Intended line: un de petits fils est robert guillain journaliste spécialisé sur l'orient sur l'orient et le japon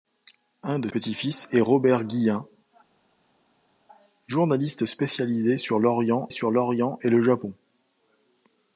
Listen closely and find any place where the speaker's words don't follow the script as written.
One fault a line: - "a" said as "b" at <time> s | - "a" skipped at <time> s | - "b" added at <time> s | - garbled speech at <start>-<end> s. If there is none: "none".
none